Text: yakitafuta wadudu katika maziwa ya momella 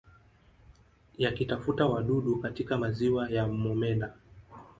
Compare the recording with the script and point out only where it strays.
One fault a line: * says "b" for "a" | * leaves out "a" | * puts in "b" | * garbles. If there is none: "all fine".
all fine